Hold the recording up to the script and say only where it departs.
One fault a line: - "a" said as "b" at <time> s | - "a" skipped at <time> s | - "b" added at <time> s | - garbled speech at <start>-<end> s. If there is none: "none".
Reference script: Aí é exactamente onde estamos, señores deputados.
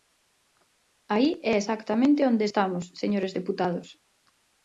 none